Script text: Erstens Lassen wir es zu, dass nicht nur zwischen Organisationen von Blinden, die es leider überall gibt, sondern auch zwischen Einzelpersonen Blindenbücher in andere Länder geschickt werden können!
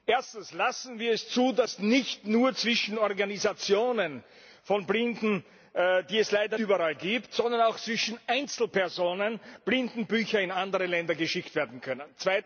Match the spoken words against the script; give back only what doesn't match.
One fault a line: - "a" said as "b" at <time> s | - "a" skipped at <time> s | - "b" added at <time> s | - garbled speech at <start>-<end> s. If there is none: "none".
none